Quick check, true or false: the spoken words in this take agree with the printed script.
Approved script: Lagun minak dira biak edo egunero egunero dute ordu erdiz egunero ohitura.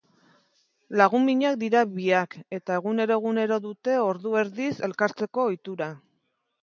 false